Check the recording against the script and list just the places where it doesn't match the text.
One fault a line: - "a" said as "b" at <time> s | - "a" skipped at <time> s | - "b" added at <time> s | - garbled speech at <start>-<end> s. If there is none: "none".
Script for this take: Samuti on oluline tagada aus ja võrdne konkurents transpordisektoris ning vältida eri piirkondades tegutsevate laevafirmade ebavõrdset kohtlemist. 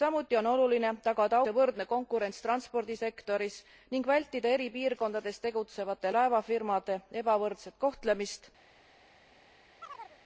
- "aus" skipped at 1.4 s